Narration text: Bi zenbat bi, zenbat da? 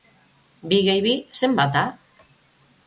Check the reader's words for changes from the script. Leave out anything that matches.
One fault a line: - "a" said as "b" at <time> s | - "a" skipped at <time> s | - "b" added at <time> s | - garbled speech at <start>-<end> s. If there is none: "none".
- "zenbat" said as "gehi" at 0.9 s